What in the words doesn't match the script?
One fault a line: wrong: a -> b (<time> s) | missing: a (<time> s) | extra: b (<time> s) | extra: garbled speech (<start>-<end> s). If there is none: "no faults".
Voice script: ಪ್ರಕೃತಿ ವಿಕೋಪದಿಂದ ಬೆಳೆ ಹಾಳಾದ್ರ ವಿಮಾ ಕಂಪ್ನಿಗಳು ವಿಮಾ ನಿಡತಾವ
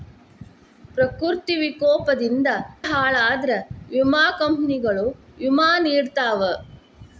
missing: ಬೆಳೆ (2.5 s)